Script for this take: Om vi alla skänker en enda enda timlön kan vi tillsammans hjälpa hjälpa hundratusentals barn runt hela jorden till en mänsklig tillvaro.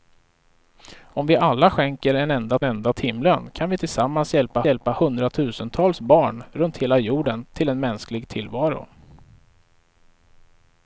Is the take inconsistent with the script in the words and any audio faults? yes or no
no